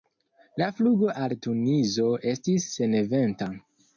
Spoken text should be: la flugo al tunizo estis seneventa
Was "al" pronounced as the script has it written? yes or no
yes